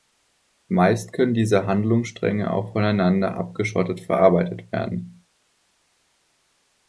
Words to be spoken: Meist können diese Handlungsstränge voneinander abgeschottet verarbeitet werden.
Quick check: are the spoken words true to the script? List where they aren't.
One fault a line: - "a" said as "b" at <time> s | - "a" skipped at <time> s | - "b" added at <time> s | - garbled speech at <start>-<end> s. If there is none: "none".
- "auch" added at 2.5 s